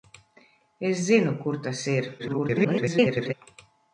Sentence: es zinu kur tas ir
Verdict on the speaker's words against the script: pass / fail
fail